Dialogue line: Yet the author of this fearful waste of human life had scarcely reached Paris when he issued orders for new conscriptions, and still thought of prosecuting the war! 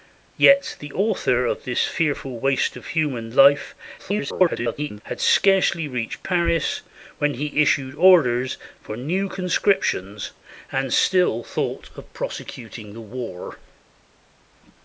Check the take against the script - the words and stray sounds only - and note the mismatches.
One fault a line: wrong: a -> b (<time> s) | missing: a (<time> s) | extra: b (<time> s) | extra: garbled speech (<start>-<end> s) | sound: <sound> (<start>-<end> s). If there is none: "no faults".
extra: garbled speech (4.0-5.0 s)